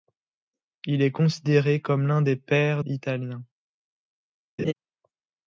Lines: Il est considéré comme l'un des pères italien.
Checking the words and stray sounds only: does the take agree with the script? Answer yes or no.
no